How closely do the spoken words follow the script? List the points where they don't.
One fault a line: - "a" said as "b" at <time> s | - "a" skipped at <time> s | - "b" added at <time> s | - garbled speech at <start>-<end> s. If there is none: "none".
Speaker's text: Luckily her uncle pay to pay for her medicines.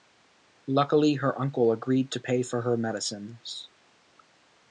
- "pay" said as "agreed" at 1.7 s